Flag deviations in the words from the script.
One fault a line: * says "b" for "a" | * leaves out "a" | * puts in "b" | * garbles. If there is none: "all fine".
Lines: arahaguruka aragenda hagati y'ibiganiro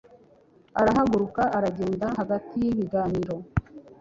all fine